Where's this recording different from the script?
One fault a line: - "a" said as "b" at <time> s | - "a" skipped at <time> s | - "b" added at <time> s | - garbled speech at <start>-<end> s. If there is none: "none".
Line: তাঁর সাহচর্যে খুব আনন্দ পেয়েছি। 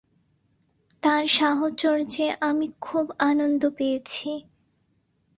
- "আমি" added at 2.4 s